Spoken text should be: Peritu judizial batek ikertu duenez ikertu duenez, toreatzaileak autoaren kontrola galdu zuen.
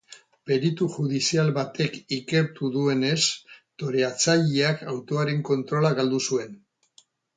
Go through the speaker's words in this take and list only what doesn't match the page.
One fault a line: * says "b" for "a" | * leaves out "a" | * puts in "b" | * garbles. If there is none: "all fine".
* leaves out "ikertu duenez"